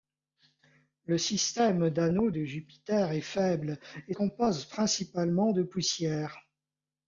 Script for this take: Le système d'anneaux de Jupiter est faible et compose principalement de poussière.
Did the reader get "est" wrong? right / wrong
right